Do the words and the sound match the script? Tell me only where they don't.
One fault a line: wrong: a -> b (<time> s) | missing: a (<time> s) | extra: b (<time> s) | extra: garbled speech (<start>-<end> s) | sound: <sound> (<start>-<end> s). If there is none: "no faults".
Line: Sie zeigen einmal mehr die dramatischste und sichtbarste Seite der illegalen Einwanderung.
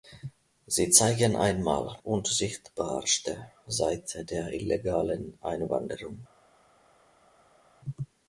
missing: mehr die dramatischste (1.9 s)